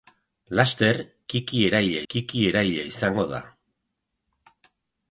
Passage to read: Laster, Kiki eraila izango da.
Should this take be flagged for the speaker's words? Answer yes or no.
yes